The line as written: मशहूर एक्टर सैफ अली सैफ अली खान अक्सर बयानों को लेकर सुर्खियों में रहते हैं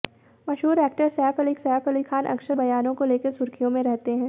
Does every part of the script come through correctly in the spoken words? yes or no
yes